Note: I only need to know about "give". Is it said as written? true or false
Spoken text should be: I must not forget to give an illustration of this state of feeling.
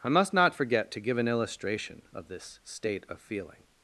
true